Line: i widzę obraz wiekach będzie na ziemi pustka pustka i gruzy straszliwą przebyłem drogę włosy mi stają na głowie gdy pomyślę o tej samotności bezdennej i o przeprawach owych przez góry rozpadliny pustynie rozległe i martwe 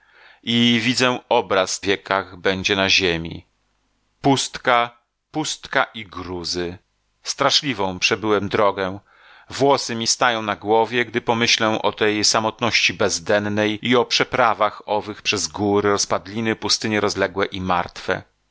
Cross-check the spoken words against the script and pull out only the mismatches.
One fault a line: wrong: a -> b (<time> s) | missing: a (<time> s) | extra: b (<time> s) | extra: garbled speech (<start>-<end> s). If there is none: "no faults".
no faults